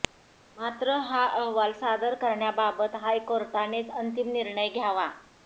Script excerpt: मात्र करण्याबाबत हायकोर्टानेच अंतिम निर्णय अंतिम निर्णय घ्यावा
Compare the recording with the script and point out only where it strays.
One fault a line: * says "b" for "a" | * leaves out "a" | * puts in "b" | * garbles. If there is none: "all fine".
* puts in "हा अहवाल सादर"
* leaves out "अंतिम निर्णय"